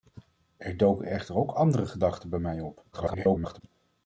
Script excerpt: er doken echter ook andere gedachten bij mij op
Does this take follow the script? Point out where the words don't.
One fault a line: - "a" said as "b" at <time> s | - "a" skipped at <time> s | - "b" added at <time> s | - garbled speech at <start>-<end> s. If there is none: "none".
- garbled speech at 2.9-3.6 s